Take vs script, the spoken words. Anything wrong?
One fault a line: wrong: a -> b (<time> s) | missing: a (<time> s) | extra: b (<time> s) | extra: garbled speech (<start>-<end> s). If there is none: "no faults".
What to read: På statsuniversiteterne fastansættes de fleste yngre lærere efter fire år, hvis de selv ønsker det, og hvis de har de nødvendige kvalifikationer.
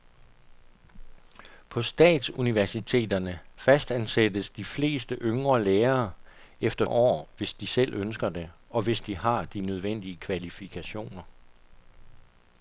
missing: fire (6.8 s)